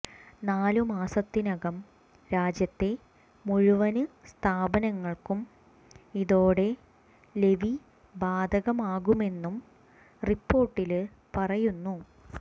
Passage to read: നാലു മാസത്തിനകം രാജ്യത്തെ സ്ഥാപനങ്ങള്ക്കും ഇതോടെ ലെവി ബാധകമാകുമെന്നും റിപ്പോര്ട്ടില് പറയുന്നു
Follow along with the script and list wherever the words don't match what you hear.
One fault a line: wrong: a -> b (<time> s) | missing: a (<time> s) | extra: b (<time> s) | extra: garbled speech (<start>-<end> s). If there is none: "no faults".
extra: മുഴുവന് (3.5 s)